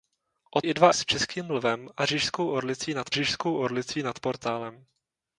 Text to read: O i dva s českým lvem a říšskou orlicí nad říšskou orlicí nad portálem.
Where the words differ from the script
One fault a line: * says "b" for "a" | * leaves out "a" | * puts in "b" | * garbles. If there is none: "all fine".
all fine